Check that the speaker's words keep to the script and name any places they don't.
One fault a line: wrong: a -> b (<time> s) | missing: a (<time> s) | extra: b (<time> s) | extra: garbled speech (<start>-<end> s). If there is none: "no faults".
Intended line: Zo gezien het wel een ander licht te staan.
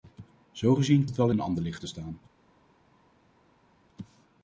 no faults